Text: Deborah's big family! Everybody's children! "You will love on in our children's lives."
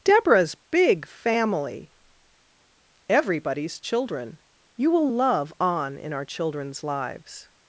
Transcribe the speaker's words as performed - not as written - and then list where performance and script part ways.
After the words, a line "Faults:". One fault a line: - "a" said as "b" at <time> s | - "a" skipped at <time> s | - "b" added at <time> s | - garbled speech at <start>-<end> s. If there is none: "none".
Deborah's big family! Everybody's children! "You will love on in our children's lives."
Faults:
none